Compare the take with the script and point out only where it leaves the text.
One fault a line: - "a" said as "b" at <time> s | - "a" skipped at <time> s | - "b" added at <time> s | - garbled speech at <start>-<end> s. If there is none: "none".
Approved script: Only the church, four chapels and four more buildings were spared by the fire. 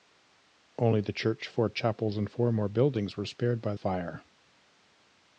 - "the" skipped at 3.8 s